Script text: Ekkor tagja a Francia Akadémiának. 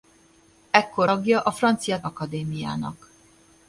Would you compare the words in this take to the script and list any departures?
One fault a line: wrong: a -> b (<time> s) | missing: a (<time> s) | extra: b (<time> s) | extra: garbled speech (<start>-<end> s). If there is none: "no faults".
no faults